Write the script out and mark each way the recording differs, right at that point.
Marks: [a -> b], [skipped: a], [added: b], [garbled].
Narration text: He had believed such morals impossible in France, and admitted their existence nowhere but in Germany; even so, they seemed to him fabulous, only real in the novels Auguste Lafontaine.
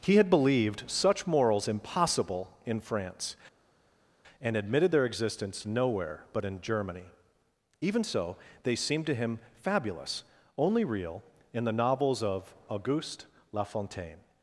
He had believed such morals impossible in France, and admitted their existence nowhere but in Germany; even so, they seemed to him fabulous, only real in the novels [added: of] Auguste Lafontaine.